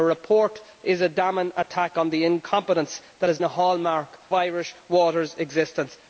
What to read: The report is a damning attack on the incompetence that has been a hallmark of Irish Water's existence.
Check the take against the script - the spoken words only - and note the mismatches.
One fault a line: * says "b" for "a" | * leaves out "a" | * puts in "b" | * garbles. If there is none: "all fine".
* leaves out "been"
* leaves out "of"